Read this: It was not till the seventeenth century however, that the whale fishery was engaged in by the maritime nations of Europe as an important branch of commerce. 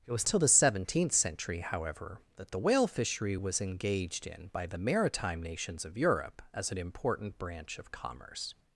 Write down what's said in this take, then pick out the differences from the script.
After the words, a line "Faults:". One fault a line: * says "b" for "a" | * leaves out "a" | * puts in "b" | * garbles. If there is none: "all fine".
It was till the seventeenth century however, that the whale fishery was engaged in by the maritime nations of Europe as an important branch of commerce.
Faults:
* leaves out "not"